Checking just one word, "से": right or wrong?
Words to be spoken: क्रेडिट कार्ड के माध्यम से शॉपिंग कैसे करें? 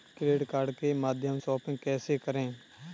wrong